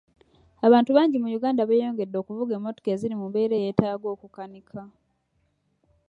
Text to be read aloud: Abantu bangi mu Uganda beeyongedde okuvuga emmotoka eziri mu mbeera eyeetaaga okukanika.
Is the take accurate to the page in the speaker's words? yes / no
yes